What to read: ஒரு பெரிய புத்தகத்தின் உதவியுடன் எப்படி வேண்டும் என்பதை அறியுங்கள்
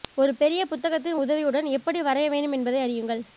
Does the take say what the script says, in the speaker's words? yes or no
no